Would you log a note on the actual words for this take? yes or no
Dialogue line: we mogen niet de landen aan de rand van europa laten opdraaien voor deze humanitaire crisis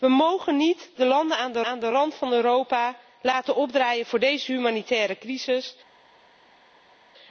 yes